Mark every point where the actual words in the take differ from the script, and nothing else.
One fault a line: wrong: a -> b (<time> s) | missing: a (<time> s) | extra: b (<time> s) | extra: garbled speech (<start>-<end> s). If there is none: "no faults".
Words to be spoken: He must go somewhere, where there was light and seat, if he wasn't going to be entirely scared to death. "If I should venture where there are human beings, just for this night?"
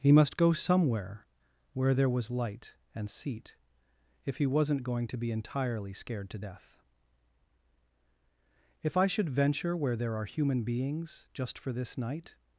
no faults